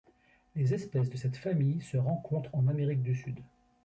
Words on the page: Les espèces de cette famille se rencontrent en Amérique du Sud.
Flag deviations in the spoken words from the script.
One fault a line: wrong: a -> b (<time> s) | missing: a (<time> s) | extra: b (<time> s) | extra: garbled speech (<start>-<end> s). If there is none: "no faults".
no faults